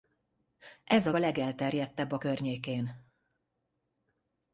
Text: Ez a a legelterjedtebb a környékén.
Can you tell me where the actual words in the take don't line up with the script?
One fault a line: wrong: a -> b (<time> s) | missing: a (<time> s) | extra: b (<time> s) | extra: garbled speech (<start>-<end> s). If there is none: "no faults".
no faults